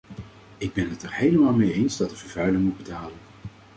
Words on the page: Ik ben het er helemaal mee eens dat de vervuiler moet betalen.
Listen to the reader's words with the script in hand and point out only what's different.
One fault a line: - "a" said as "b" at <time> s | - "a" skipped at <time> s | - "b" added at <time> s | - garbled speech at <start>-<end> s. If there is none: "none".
none